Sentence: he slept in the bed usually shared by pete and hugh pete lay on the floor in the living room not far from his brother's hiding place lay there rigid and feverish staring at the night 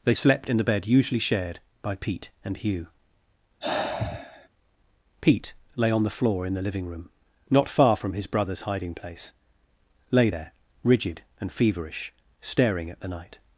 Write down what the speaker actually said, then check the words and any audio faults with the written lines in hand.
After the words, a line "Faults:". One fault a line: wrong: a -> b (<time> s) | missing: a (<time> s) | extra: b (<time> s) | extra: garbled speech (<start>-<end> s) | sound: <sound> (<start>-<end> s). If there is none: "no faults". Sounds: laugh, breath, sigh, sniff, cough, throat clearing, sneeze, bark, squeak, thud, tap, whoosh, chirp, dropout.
they slept in the bed usually shared by pete and hugh pete lay on the floor in the living room not far from his brother's hiding place lay there rigid and feverish staring at the night
Faults:
wrong: he -> they (0.0 s)
sound: sigh (3.6-4.5 s)